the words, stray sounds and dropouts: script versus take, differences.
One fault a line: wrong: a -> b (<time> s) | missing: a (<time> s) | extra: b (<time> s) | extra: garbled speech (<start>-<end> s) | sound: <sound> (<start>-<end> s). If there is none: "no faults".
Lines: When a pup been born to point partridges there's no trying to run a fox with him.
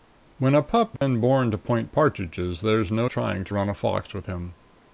sound: dropout (1.0-1.0 s)